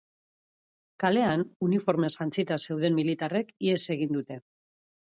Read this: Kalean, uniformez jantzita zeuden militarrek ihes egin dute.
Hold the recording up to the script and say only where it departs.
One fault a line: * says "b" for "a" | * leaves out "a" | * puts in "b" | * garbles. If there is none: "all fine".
all fine